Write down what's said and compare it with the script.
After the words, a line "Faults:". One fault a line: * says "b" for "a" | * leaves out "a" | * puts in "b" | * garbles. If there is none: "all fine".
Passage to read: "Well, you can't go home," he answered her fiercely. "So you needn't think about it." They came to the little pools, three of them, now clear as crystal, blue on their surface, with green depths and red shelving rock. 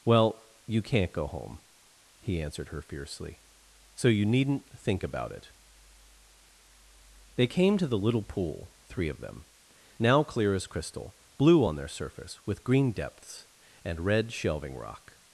"Well, you can't go home," he answered her fiercely. "So you needn't think about it." They came to the little pool, three of them, now clear as crystal, blue on their surface, with green depths and red shelving rock.
Faults:
* says "pool" for "pools"